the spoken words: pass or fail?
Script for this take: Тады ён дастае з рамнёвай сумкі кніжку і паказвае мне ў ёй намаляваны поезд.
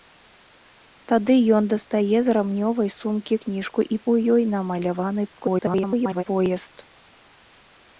fail